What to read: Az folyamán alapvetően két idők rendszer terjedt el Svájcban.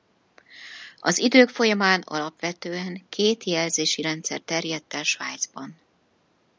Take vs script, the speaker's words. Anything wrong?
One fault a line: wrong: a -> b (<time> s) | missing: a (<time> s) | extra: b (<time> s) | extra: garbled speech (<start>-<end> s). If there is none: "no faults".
extra: idők (1.2 s)
wrong: idők -> jelzési (3.4 s)